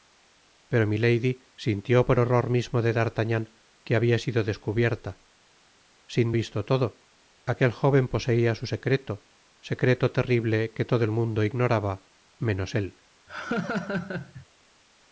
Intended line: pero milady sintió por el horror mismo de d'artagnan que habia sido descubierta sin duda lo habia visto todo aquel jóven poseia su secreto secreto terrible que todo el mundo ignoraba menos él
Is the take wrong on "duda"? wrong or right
wrong